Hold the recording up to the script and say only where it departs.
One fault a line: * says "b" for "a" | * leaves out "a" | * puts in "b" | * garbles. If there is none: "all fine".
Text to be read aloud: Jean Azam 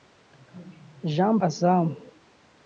all fine